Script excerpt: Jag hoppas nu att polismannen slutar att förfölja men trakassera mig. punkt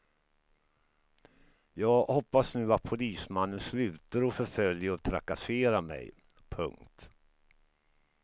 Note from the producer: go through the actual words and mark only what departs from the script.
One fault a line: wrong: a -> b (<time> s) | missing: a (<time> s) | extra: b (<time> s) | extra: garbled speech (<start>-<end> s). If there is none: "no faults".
wrong: men -> och (4.9 s)